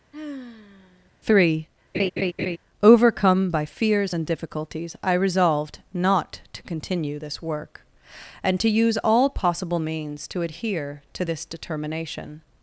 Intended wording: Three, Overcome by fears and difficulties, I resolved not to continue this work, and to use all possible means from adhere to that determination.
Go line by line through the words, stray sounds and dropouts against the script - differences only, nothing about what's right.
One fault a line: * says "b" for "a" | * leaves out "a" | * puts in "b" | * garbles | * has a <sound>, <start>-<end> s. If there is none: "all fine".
* has a sigh, 0.1-1.1 s
* has a laugh, 1.9-2.6 s
* says "to" for "from"
* says "this" for "that"